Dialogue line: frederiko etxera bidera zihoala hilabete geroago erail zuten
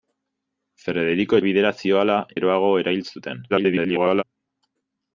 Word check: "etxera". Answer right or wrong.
wrong